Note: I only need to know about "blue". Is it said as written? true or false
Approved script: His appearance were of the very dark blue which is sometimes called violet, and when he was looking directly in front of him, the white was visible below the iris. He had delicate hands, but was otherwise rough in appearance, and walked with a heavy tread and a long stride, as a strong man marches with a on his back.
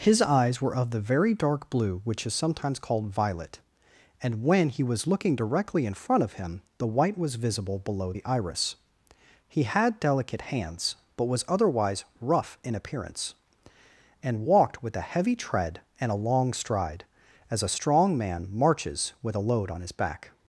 true